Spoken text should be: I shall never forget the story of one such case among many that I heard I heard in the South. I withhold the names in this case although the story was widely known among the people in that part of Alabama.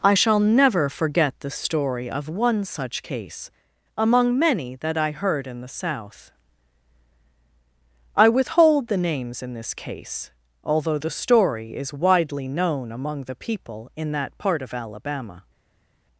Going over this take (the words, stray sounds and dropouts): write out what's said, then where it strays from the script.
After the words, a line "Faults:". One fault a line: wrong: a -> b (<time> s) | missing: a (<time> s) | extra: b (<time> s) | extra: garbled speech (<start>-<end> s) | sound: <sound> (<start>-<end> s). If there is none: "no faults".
I shall never forget the story of one such case among many that I heard in the South. I withhold the names in this case although the story is widely known among the people in that part of Alabama.
Faults:
missing: I heard (5.5 s)
wrong: was -> is (11.8 s)